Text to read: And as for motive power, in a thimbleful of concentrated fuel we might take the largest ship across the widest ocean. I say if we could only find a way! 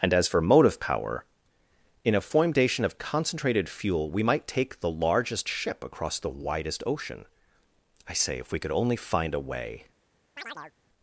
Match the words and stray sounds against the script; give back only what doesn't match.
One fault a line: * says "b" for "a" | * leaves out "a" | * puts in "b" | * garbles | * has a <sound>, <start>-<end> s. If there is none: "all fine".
* says "foimdation" for "thimbleful"
* has a chirp, 10.4-10.7 s